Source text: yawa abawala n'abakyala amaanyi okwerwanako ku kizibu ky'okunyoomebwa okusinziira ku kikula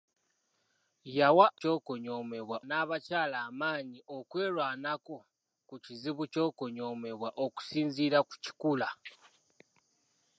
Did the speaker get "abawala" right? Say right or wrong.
wrong